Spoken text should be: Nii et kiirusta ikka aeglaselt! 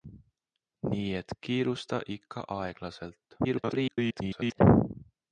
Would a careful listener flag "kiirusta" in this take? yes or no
no